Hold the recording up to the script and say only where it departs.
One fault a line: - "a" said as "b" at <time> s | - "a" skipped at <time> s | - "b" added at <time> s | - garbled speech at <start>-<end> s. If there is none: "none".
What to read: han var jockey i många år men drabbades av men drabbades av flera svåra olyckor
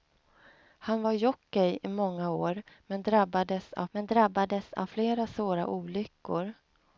none